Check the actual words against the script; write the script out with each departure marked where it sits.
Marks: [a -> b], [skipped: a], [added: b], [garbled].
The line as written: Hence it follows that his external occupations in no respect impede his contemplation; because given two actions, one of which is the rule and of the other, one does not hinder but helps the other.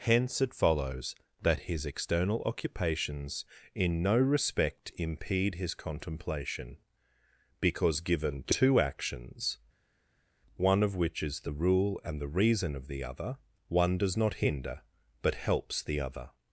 Hence it follows that his external occupations in no respect impede his contemplation; because given two actions, one of which is the rule and [added: the reason] of the other, one does not hinder but helps the other.